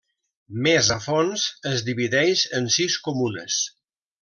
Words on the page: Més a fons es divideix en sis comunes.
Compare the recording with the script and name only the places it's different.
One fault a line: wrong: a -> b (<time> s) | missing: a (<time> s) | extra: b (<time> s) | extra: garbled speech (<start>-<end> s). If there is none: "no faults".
no faults